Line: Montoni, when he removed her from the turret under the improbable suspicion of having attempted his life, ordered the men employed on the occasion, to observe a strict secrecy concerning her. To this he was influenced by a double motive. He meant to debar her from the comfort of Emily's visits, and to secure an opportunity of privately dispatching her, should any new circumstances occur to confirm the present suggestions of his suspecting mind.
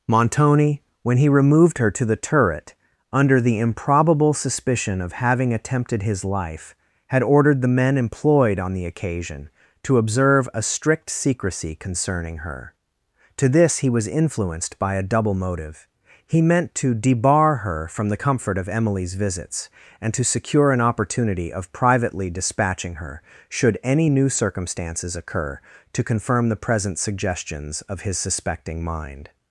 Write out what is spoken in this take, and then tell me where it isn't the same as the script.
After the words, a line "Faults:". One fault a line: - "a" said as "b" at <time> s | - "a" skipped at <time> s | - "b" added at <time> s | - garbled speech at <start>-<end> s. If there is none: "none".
Montoni, when he removed her to the turret under the improbable suspicion of having attempted his life, had ordered the men employed on the occasion, to observe a strict secrecy concerning her. To this he was influenced by a double motive. He meant to debar her from the comfort of Emily's visits, and to secure an opportunity of privately dispatching her, should any new circumstances occur to confirm the present suggestions of his suspecting mind.
Faults:
- "from" said as "to" at 1.9 s
- "had" added at 7.1 s